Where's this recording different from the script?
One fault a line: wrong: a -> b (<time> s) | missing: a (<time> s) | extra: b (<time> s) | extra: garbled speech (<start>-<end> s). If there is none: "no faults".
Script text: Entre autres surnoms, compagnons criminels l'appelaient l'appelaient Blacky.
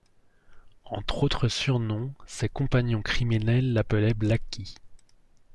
extra: ses (2.3 s)
missing: l'appelaient (4.1 s)